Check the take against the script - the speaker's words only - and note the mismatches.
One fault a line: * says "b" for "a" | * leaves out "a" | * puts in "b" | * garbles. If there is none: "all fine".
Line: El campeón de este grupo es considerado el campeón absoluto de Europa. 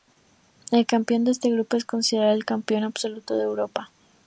all fine